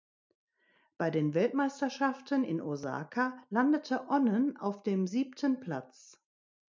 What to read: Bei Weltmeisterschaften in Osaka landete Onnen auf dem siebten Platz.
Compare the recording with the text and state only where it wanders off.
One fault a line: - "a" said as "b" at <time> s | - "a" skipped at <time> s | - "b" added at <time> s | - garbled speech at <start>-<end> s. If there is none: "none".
- "den" added at 1.1 s